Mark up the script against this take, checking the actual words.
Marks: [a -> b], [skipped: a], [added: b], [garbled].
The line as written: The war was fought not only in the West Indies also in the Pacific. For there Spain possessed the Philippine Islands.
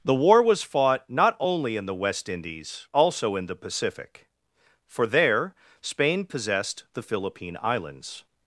The war was fought not only in the West Indies also in the Pacific. For there Spain possessed the Philippine Islands.